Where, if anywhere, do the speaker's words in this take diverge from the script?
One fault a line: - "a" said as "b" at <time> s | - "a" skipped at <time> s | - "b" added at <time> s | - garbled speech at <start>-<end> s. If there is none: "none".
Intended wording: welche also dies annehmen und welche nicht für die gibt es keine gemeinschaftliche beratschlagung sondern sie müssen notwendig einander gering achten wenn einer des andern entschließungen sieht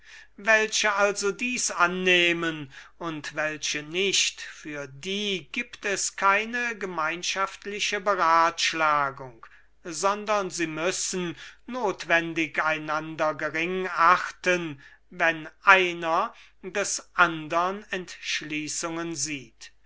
none